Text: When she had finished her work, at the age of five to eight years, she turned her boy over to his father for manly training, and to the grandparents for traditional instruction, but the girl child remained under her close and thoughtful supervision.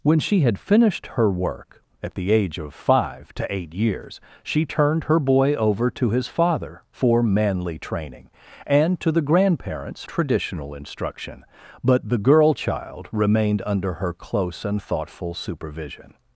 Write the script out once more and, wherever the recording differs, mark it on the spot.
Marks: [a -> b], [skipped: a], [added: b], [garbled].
When she had finished her work, at the age of five to eight years, she turned her boy over to his father for manly training, and to the grandparents [skipped: for] traditional instruction, but the girl child remained under her close and thoughtful supervision.